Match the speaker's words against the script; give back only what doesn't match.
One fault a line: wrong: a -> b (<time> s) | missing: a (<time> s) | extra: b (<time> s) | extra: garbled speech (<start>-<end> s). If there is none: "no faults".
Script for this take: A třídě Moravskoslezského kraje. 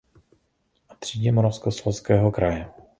no faults